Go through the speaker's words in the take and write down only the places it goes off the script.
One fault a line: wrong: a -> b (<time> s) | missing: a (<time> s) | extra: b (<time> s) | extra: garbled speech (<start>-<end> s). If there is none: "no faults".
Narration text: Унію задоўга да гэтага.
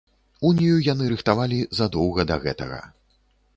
extra: яны рыхтавалі (0.9 s)